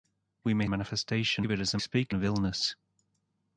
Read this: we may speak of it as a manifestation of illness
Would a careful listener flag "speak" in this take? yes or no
yes